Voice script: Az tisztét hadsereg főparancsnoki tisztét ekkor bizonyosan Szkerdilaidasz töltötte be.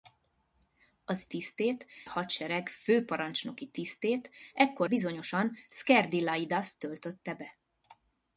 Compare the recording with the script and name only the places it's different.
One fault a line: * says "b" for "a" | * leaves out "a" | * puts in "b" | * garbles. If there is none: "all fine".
all fine